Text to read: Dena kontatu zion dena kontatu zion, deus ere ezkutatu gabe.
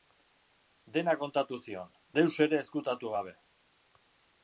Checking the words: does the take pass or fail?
fail